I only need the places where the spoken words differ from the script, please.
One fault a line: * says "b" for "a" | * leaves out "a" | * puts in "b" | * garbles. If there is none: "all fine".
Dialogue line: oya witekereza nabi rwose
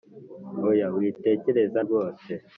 * leaves out "nabi"